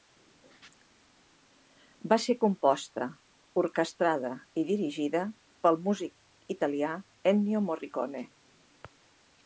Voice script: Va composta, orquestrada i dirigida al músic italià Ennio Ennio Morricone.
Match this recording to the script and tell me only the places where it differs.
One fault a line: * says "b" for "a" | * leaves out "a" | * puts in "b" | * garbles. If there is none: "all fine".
* puts in "ser"
* says "pel" for "al"
* leaves out "Ennio"